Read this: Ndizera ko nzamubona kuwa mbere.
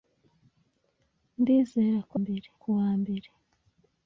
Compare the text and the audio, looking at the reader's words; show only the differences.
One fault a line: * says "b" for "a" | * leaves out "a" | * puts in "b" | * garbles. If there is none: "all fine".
* says "mbere" for "nzamubona"